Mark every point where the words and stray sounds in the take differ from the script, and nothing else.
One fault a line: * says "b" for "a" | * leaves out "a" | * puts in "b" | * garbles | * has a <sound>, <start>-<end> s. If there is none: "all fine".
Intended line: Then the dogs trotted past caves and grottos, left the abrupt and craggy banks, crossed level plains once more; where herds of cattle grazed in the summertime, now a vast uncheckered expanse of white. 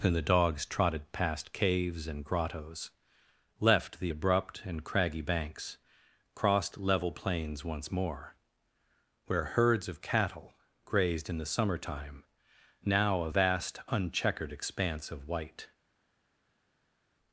* says "And" for "Then"